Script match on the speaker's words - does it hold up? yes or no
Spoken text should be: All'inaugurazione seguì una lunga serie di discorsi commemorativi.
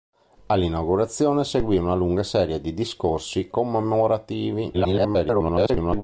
no